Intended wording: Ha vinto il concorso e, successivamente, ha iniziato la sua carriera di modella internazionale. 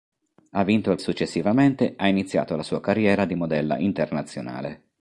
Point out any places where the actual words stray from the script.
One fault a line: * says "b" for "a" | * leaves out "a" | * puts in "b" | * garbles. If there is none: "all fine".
* leaves out "concorso e"